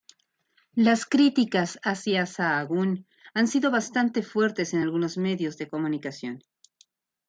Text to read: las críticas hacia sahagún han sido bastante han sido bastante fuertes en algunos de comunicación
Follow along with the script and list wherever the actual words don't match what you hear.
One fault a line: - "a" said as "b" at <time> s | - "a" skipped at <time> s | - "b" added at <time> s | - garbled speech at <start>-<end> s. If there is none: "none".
- "han sido bastante" skipped at 4.2 s
- "medios" added at 5.2 s